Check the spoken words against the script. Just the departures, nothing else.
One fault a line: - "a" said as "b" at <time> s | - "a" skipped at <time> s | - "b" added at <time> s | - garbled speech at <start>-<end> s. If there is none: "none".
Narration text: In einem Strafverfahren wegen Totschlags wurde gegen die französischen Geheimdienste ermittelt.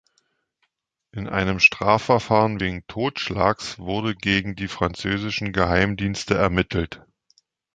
none